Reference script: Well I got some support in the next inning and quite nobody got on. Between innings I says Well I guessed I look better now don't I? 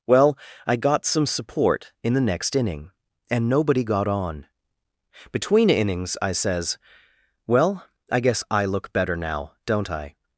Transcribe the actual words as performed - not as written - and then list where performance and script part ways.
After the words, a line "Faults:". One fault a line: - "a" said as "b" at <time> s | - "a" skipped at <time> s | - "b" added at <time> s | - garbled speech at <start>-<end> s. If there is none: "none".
Well I got some support in the next inning and nobody got on. Between innings I says Well I guess I look better now don't I?
Faults:
- "quite" skipped at 3.5 s
- "guessed" said as "guess" at 8.2 s